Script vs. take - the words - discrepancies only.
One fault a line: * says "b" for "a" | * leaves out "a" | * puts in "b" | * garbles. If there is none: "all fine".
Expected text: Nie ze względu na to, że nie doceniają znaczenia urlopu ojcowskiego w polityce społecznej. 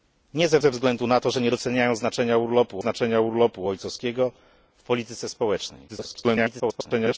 * puts in "ze"
* puts in "znaczenia urlopu"
* garbles